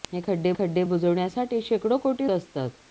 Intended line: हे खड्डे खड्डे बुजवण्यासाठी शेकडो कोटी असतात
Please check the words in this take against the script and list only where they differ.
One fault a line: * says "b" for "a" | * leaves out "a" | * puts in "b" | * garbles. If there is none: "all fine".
all fine